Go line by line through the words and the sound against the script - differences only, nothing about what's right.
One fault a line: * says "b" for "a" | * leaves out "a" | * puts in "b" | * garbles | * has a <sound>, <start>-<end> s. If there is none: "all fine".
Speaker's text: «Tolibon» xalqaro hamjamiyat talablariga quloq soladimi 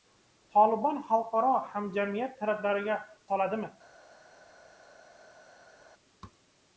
* leaves out "quloq"